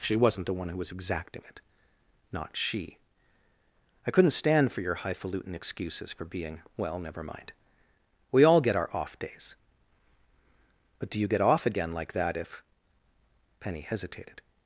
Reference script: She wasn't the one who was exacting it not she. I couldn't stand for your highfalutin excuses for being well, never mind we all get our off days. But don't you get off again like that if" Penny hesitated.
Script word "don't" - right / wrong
wrong